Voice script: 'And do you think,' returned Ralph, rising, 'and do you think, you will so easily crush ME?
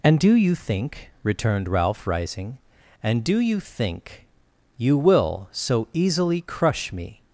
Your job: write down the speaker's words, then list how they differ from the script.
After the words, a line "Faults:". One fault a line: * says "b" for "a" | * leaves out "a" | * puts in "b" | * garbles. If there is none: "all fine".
'And do you think,' returned Ralph, rising, 'and do you think, you will so easily crush ME?
Faults:
all fine